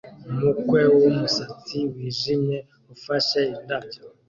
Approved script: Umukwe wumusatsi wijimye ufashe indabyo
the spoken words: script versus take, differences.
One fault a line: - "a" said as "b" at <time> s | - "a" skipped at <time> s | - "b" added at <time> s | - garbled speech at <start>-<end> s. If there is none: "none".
none